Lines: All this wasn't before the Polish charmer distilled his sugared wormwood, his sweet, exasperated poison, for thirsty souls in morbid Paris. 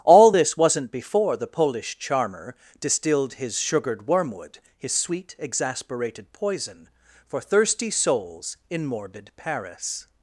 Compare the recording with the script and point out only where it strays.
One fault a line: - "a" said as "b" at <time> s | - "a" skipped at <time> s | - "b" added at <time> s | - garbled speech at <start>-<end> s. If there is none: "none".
none